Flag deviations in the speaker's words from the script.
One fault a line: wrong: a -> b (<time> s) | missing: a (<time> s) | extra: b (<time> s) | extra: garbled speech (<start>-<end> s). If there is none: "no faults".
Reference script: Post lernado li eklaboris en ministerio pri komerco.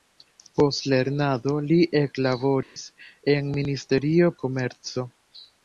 missing: pri (4.3 s)